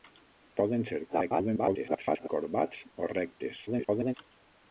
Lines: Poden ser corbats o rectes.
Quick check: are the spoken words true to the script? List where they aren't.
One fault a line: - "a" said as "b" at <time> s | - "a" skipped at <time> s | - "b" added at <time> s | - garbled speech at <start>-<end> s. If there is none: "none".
- garbled speech at 1.1-2.3 s
- garbled speech at 3.7-4.1 s